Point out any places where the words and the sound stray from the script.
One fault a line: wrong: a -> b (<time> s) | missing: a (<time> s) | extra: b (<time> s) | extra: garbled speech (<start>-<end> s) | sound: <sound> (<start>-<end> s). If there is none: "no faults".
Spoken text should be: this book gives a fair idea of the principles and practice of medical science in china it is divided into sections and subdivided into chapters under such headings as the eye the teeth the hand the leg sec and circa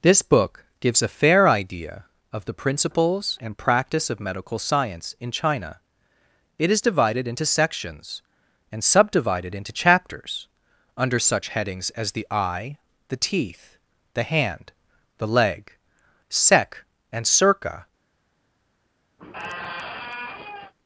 sound: squeak (19.2-20.7 s)